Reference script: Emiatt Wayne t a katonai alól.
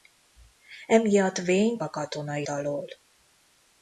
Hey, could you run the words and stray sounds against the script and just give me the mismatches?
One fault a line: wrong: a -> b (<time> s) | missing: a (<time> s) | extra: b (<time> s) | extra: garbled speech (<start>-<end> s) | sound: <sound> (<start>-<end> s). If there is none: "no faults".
no faults